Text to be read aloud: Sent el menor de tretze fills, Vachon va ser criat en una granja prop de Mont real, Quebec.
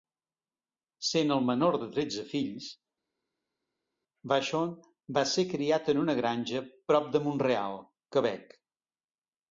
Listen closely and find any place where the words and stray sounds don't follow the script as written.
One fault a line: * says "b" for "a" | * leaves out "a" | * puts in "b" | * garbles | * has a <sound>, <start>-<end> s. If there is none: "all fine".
all fine